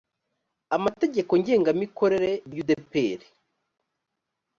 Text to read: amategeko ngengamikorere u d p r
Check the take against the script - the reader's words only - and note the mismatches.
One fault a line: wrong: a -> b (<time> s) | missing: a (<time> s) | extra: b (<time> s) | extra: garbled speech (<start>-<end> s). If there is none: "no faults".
no faults